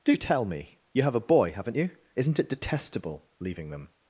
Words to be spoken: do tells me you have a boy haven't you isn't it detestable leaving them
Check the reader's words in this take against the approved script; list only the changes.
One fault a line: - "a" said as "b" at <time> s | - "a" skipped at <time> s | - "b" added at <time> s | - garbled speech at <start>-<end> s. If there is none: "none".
- "tells" said as "tell" at 0.2 s